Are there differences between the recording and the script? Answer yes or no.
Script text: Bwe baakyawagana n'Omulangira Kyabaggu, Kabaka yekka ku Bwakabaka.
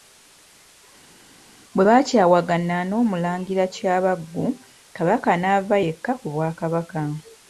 yes